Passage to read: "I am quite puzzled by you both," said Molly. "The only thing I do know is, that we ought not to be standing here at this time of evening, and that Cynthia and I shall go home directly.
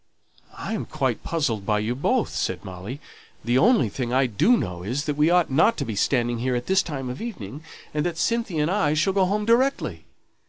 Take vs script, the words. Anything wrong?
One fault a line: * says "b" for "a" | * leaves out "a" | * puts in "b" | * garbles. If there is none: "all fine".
all fine